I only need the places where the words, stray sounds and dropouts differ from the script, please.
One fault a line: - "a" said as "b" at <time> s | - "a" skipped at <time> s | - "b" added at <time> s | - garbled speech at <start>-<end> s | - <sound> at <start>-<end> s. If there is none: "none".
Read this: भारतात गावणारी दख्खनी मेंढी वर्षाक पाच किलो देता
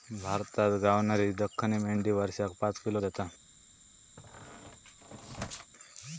- squeak at 4.2-5.7 s